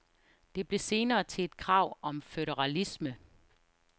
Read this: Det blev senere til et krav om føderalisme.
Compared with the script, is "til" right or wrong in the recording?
right